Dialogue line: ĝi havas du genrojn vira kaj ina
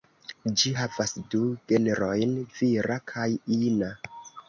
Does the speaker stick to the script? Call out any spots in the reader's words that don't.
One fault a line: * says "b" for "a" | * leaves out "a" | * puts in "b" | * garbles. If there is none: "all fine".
all fine